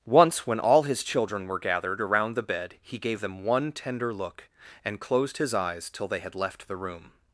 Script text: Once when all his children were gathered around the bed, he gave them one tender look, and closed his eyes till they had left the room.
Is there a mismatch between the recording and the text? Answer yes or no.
no